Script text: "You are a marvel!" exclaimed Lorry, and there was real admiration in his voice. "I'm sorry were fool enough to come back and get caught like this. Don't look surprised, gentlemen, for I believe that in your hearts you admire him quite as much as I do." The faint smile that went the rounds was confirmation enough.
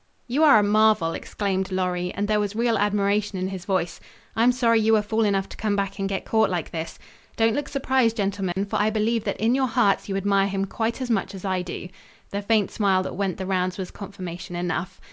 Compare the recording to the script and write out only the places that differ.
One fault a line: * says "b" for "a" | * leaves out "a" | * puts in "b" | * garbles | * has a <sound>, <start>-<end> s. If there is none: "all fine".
* puts in "you"
* has a dropout, 8.5-8.6 s